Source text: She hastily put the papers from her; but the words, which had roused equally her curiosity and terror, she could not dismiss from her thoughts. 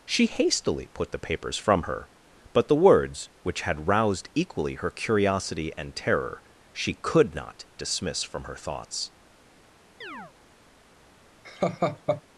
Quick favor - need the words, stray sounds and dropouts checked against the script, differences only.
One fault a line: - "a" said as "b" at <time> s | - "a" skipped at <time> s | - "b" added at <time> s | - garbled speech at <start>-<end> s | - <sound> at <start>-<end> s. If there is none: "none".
- chirp at 10.0-10.3 s
- laugh at 11.4-12.2 s